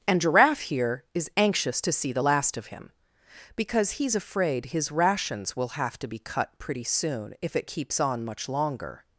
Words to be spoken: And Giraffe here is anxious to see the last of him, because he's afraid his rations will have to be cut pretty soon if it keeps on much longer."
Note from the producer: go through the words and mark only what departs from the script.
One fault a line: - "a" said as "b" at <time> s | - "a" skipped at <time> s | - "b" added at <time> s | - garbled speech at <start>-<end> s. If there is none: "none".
none